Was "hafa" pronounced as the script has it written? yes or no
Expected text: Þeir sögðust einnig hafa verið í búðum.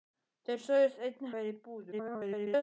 no